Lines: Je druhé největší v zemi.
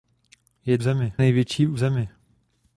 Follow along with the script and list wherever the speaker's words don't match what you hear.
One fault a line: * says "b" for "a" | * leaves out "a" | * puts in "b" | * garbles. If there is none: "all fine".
* says "zemi" for "druhé"